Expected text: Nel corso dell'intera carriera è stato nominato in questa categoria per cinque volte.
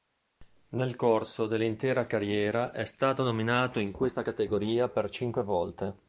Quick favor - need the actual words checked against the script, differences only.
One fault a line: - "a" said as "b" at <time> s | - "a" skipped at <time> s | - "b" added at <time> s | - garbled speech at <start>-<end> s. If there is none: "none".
none